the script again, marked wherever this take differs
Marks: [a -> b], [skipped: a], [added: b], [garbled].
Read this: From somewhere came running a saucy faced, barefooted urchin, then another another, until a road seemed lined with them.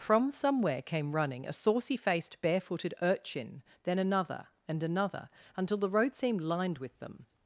From somewhere came running a saucy faced, barefooted urchin, then another [added: and] another, until [a -> the] road seemed lined with them.